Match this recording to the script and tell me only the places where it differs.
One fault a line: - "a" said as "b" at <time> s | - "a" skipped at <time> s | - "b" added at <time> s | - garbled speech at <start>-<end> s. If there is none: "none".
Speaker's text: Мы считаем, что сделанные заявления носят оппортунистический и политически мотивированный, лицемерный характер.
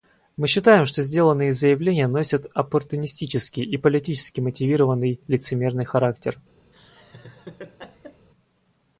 none